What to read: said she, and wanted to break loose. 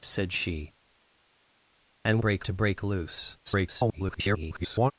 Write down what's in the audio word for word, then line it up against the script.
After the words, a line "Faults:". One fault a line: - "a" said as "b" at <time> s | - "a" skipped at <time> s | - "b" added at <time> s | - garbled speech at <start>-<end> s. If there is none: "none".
said she, and break to break loose. [garbled]
Faults:
- "wanted" said as "break" at 2.2 s
- garbled speech at 3.4-4.9 s